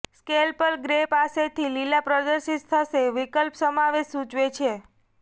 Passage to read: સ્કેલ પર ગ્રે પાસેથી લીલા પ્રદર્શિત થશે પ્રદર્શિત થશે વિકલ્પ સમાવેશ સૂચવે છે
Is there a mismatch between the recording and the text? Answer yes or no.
yes